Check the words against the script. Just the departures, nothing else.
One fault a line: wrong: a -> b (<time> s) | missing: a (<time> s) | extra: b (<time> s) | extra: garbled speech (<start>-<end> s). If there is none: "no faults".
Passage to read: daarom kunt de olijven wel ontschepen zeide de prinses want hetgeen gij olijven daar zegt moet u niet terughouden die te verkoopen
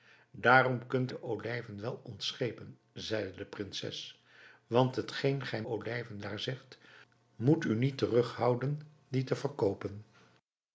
no faults